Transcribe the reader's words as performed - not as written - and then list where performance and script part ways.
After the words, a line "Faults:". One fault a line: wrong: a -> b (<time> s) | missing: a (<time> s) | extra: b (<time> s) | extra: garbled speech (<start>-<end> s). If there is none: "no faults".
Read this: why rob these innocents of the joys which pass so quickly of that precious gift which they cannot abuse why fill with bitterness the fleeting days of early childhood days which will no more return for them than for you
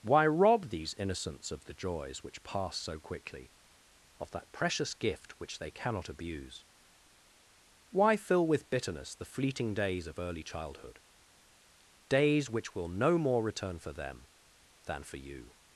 why rob these innocents of the joys which pass so quickly of that precious gift which they cannot abuse why fill with bitterness the fleeting days of early childhood days which will no more return for them than for you
Faults:
no faults